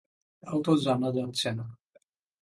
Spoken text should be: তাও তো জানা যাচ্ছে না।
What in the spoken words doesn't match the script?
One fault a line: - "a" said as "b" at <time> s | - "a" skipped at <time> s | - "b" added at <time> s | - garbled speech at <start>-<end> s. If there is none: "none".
none